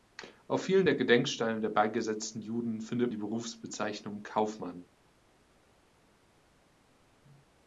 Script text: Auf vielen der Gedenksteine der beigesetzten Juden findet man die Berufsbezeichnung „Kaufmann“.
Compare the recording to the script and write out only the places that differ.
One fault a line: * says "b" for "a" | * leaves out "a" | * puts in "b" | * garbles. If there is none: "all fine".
* leaves out "man"